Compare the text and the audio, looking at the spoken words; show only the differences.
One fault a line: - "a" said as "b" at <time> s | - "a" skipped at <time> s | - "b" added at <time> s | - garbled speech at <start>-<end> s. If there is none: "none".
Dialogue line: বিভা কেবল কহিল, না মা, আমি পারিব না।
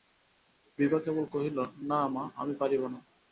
none